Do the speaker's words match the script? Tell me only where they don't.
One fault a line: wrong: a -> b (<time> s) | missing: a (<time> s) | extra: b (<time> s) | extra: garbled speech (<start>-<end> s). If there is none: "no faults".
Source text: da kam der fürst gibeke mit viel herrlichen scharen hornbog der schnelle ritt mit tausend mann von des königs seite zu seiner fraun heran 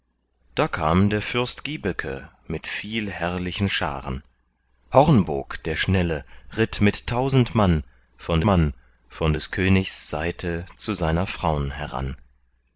extra: mann von (8.4 s)